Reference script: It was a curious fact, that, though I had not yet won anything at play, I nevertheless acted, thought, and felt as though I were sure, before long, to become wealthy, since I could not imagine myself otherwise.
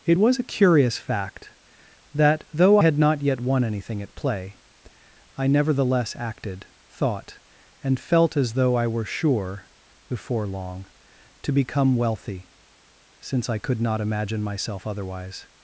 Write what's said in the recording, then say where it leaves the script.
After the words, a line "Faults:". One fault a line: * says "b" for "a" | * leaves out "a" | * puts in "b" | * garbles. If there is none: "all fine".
It was a curious fact, that, though had not yet won anything at play, I nevertheless acted, thought, and felt as though I were sure, before long, to become wealthy, since I could not imagine myself otherwise.
Faults:
* leaves out "I"